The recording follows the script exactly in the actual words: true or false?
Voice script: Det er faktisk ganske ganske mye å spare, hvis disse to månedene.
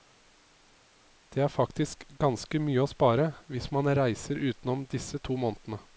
false